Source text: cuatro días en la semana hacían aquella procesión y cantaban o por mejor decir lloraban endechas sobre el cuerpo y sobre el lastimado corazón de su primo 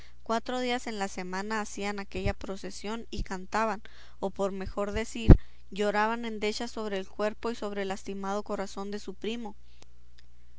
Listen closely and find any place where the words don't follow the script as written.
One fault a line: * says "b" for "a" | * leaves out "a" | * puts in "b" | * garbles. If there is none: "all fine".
all fine